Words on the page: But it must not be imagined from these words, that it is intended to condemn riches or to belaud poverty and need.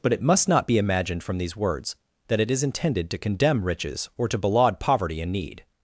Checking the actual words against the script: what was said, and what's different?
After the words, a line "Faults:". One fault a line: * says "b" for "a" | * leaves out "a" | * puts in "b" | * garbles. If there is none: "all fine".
But it must not be imagined from these words, that it is intended to condemn riches or to belaud poverty and need.
Faults:
all fine